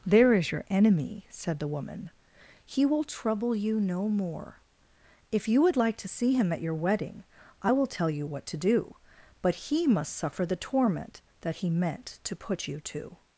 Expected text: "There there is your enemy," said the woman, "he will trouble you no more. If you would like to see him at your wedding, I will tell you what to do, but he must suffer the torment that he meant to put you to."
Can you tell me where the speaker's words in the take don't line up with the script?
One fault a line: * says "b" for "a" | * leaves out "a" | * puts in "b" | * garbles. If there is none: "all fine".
* leaves out "there"